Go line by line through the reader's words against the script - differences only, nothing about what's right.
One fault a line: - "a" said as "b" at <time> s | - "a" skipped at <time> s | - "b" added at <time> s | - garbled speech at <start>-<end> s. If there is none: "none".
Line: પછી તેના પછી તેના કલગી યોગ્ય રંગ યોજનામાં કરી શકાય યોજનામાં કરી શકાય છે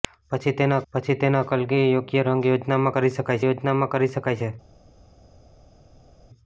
none